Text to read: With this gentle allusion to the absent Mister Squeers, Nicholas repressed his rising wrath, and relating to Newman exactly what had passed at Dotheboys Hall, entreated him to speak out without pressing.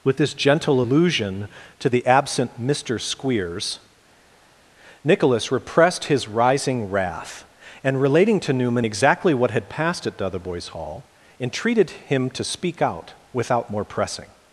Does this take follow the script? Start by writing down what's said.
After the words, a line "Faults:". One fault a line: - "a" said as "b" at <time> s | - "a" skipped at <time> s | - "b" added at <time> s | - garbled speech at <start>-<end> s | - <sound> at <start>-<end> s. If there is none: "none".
With this gentle allusion to the absent Mister Squeers, Nicholas repressed his rising wrath, and relating to Newman exactly what had passed at Dotheboys Hall, entreated him to speak out without more pressing.
Faults:
- "more" added at 13.7 s